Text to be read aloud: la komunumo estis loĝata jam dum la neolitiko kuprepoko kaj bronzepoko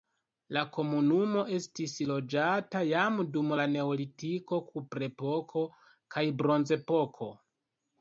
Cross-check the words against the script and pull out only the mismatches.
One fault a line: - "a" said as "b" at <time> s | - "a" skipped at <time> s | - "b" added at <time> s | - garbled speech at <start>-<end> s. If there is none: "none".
none